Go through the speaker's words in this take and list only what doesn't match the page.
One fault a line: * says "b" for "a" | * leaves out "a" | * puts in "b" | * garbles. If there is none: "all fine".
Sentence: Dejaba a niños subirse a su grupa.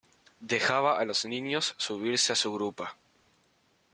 * puts in "los"